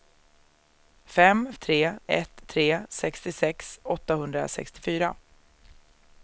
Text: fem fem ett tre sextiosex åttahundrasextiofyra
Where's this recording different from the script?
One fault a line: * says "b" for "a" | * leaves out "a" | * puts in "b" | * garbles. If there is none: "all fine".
* says "tre" for "fem"